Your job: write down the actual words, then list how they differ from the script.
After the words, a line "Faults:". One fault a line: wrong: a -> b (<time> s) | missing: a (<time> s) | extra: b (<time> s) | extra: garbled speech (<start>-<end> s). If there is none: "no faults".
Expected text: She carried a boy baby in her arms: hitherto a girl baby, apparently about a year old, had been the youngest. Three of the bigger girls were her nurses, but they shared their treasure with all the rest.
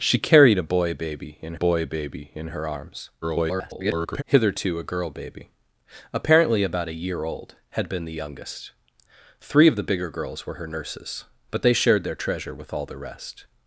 She carried a boy baby in boy baby in her arms: [garbled] hitherto a girl baby, apparently about a year old, had been the youngest. Three of the bigger girls were her nurses, but they shared their treasure with all the rest.
Faults:
extra: boy baby in (1.5 s)
extra: garbled speech (3.2-4.2 s)